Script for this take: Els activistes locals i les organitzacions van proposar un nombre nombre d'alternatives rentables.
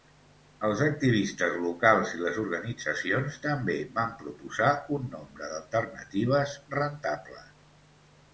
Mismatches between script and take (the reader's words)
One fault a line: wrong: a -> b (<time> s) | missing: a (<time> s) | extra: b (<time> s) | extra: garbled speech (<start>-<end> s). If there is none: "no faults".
extra: també (3.5 s)
missing: nombre (5.5 s)